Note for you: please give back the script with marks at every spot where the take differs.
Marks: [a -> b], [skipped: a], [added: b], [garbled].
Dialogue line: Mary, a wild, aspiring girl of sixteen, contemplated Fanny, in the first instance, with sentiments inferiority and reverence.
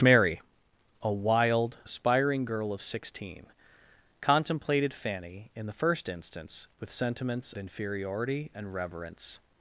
Mary, a wild, aspiring girl of sixteen, contemplated Fanny, in the first instance, with sentiments inferiority and reverence.